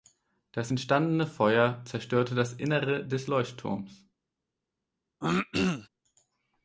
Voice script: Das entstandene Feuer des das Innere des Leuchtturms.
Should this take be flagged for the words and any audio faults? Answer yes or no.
yes